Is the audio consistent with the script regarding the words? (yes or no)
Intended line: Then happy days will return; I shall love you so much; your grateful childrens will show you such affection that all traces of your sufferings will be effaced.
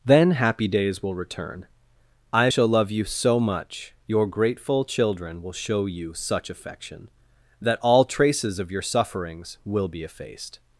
no